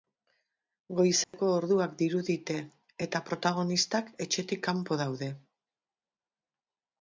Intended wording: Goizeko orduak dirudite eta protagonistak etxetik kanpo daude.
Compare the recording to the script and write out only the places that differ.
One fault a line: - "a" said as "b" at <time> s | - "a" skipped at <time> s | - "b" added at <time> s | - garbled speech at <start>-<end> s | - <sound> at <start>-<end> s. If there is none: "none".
- dropout at 1.2-1.3 s